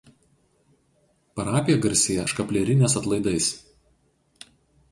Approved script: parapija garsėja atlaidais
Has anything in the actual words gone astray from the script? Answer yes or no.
yes